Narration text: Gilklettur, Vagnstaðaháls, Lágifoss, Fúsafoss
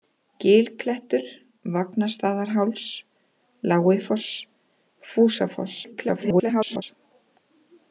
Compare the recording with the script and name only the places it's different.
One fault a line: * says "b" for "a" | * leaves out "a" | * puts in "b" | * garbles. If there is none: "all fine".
* garbles